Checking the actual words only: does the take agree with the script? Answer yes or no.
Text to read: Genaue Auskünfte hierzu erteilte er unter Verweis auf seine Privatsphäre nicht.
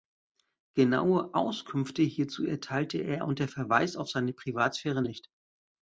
yes